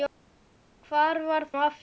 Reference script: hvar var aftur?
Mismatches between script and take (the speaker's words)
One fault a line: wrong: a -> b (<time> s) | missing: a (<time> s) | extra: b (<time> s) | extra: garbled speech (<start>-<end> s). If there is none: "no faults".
no faults